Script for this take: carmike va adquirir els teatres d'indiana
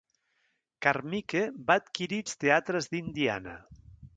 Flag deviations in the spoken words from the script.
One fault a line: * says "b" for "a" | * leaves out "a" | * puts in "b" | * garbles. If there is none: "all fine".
all fine